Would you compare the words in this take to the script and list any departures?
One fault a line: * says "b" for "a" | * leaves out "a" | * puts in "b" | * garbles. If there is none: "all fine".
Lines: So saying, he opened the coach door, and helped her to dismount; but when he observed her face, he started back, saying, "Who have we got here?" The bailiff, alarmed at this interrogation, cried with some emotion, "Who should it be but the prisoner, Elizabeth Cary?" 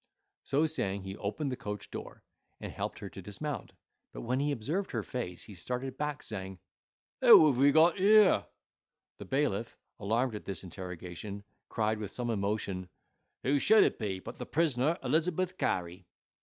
all fine